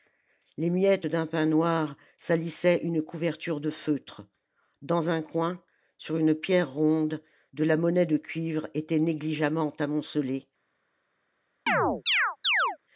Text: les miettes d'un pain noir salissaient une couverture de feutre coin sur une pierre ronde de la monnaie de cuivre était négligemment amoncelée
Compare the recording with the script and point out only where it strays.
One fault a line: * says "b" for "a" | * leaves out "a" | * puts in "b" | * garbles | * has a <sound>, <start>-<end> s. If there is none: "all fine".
* puts in "dans un"
* has a chirp, 11.7-12.8 s